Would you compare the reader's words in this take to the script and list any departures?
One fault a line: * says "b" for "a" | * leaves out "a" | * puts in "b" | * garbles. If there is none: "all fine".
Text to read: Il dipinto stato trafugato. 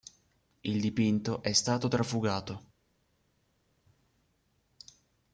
* puts in "è"